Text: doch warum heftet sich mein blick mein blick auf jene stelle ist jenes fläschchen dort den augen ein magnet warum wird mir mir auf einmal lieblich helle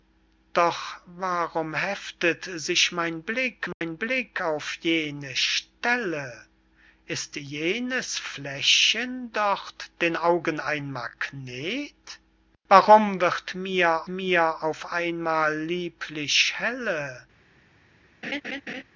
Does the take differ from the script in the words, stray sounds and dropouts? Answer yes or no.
yes